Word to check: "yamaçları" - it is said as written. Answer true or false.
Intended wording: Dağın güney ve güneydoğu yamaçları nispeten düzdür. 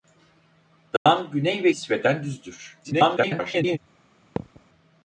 false